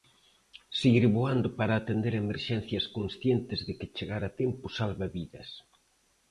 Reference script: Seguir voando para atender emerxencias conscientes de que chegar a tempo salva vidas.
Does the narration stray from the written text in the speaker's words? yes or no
no